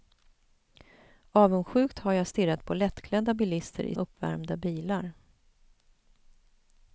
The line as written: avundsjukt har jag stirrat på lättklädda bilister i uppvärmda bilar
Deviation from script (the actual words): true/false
false